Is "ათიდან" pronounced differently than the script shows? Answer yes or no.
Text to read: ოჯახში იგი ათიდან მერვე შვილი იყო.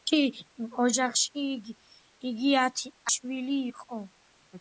yes